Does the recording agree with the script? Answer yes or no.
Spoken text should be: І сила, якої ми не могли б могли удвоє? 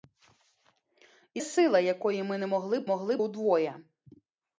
yes